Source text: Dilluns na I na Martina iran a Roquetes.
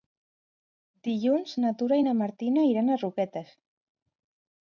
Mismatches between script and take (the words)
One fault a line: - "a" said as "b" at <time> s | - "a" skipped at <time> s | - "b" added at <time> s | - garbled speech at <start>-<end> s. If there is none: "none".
- "Tura" added at 1.8 s